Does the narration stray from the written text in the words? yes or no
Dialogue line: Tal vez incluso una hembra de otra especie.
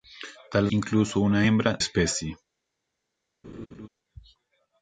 yes